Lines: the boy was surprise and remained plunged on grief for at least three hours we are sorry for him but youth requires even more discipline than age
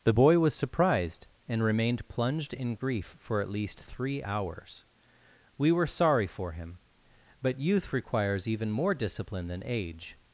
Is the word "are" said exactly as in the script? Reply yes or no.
no